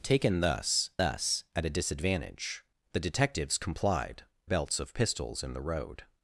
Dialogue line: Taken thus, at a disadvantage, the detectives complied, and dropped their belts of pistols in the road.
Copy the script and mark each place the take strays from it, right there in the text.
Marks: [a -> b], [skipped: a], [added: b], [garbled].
Taken thus, [added: thus] at a disadvantage, the detectives complied, [skipped: and dropped their] belts of pistols in the road.